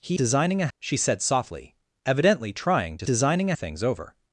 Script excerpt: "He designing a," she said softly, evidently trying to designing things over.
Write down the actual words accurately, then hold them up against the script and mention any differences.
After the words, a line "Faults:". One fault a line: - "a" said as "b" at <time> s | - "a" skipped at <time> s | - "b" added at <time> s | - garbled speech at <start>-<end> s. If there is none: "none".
"He designing a," she said softly, evidently trying to designing things over.
Faults:
none